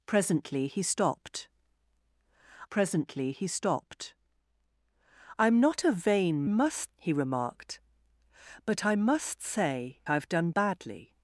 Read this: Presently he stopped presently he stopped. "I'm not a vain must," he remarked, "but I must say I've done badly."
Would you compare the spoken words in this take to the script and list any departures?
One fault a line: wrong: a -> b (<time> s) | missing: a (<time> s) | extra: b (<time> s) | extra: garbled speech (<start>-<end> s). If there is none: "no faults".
no faults